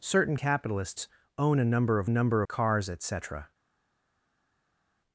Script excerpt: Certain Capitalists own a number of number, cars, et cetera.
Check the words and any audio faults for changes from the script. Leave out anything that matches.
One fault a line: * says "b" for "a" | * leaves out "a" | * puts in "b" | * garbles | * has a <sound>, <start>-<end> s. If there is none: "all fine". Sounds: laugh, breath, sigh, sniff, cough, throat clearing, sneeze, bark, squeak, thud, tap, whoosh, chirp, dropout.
all fine